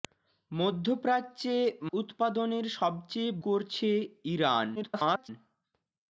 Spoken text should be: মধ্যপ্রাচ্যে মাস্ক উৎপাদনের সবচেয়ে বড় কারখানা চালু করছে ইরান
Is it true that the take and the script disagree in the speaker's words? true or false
true